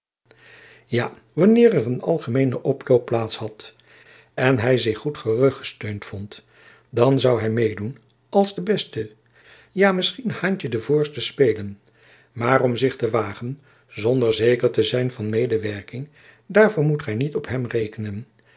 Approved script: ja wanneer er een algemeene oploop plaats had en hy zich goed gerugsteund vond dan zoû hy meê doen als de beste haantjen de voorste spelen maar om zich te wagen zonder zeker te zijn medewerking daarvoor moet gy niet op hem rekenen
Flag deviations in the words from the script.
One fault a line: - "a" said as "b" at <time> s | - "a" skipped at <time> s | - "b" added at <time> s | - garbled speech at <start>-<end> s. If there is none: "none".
- "ja misschien" added at 9.7 s
- "van" added at 15.1 s